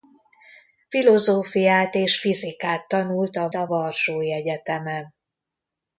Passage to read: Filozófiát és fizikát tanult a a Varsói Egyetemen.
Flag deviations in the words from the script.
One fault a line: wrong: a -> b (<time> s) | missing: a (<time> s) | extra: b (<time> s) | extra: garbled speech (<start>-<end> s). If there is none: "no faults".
no faults